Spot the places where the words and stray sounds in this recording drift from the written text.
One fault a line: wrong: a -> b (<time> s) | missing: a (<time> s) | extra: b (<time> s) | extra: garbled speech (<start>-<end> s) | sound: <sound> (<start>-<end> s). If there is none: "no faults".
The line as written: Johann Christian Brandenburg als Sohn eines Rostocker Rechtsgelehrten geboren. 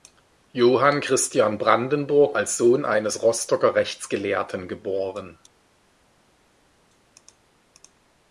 no faults